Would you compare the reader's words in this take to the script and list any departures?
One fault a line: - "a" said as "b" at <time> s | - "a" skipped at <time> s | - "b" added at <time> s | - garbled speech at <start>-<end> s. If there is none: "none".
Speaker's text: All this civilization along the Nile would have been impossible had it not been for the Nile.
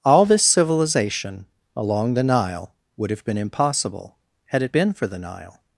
- "not" skipped at 4.7 s